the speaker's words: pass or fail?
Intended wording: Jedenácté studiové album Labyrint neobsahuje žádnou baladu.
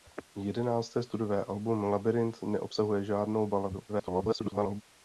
fail